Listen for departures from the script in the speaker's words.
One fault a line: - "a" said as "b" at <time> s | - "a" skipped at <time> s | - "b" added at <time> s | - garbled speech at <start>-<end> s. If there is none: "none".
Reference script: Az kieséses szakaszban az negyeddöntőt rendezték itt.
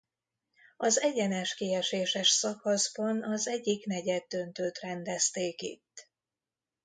- "egyenes" added at 1.0 s
- "egyik" added at 3.5 s